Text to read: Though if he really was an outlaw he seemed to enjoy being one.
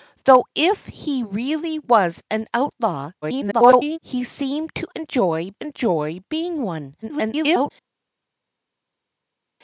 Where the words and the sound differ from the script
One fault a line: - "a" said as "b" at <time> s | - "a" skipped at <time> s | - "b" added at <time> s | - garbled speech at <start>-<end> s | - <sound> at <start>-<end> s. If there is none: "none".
- garbled speech at 3.2-4.0 s
- "enjoy" added at 5.6 s
- garbled speech at 7.0-7.7 s